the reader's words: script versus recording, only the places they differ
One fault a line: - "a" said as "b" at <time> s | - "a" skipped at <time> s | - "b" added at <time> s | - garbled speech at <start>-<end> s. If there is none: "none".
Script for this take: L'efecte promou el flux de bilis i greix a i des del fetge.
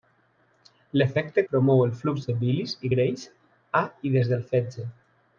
none